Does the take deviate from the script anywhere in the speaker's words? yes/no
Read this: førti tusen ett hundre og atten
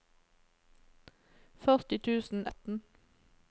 yes